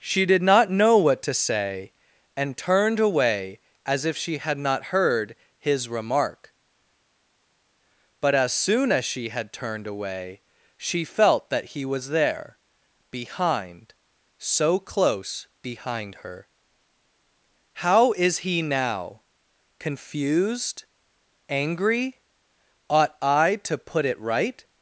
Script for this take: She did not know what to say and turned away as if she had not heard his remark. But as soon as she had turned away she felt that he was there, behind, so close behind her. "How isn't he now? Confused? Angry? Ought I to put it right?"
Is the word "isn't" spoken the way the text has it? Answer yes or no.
no